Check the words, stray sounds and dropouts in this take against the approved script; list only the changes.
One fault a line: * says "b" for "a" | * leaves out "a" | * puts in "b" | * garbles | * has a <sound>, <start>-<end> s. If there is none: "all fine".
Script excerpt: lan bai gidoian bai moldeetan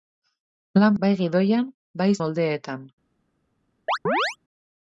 * has a chirp, 3.9-4.4 s